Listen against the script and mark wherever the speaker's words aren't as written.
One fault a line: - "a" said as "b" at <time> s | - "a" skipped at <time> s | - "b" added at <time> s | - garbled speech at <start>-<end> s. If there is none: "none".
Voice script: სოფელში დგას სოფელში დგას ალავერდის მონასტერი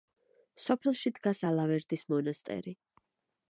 - "სოფელში დგას" skipped at 1.4 s